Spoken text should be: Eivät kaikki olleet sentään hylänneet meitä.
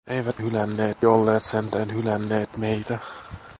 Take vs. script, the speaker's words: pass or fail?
fail